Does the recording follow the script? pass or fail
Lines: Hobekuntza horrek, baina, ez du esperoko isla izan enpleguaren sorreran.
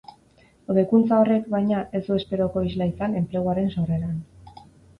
pass